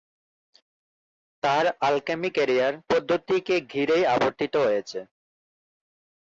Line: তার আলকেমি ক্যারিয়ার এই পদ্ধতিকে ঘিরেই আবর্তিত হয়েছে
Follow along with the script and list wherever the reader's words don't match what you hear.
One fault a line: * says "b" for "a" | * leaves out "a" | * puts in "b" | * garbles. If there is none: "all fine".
* leaves out "এই"